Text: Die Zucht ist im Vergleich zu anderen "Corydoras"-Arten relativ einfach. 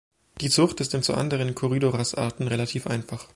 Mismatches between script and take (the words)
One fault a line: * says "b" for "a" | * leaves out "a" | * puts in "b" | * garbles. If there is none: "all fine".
* leaves out "Vergleich"